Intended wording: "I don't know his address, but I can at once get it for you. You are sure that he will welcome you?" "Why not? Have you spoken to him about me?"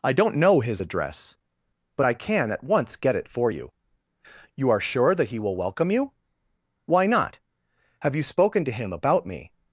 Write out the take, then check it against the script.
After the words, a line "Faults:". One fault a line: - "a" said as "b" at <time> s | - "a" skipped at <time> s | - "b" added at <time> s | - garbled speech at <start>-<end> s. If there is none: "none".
"I don't know his address, but I can at once get it for you. You are sure that he will welcome you?" "Why not? Have you spoken to him about me?"
Faults:
none